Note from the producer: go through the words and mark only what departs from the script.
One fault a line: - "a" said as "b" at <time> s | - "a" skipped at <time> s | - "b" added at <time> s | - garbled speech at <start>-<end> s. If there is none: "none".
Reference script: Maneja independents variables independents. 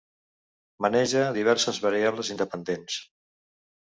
- "independents" said as "diverses" at 1.4 s